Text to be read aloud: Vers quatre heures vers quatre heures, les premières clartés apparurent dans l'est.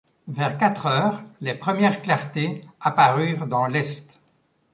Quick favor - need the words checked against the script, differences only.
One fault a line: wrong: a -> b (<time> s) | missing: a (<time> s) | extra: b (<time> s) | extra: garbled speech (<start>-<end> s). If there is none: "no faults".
missing: vers quatre heures (1.2 s)